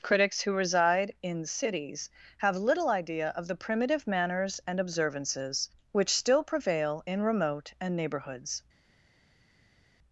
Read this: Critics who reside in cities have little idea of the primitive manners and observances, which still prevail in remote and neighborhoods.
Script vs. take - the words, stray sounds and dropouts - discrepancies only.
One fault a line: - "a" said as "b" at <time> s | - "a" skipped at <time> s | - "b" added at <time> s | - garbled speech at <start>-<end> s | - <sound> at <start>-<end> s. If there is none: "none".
none